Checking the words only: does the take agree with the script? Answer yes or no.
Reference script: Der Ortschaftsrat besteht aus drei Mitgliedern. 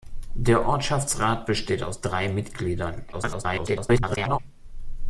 no